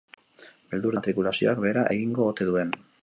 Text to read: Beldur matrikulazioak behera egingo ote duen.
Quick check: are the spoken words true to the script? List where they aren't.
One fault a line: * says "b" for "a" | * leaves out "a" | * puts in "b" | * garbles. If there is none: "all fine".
all fine